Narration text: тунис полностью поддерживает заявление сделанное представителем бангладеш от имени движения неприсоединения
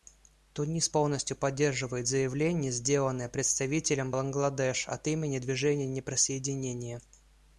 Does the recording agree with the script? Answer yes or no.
yes